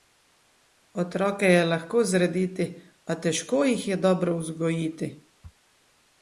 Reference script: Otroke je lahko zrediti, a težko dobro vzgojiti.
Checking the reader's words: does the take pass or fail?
fail